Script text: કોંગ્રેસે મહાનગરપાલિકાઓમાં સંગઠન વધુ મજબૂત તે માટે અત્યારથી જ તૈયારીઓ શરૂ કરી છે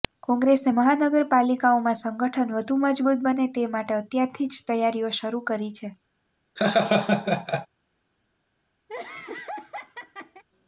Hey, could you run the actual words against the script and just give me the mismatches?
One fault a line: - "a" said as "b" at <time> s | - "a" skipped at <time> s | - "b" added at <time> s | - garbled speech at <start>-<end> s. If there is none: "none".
- "બને" added at 3.3 s